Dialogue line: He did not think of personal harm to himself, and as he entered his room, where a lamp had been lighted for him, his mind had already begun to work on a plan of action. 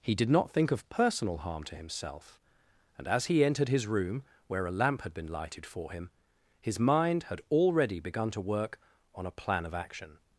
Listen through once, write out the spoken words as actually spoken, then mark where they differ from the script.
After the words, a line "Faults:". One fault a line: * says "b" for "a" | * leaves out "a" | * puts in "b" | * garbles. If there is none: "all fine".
He did not think of personal harm to himself, and as he entered his room, where a lamp had been lighted for him, his mind had already begun to work on a plan of action.
Faults:
all fine